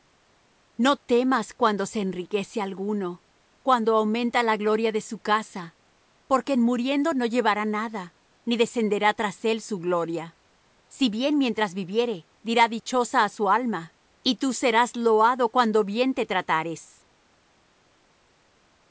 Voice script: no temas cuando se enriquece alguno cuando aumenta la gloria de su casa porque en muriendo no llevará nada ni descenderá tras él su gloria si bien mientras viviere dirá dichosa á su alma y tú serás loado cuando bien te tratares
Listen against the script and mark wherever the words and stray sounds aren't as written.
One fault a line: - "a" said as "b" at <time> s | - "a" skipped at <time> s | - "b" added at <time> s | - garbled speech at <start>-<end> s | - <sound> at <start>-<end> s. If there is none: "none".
none